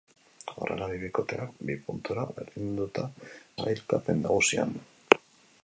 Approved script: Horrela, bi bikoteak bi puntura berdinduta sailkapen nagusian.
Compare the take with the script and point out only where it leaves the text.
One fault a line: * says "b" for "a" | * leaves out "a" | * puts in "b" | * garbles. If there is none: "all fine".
all fine